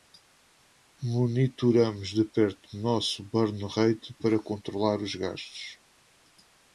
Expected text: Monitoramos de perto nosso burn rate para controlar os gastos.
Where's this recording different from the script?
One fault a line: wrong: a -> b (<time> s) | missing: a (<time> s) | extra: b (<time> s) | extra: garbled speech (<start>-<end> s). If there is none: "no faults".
no faults